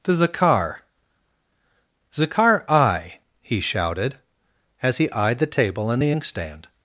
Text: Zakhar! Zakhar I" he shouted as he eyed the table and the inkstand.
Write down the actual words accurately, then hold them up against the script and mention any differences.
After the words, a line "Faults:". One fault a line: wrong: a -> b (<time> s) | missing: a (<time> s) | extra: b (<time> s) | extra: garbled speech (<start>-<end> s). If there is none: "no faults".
to Zakhar! Zakhar I" he shouted as he eyed the table and the inkstand.
Faults:
extra: to (0.0 s)